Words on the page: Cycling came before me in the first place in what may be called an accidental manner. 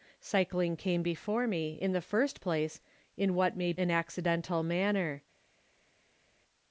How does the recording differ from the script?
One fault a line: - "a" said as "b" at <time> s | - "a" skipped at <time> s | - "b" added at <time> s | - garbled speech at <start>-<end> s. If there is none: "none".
- "be called" skipped at 3.7 s